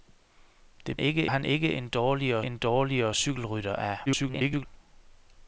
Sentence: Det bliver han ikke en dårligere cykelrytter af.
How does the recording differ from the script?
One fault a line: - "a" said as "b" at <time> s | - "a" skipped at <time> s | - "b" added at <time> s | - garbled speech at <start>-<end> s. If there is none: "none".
- "bliver" said as "ikke" at 1.0 s
- "en dårligere" added at 2.4 s
- garbled speech at 4.1-4.7 s